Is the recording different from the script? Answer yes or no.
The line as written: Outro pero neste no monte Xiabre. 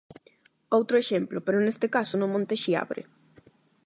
yes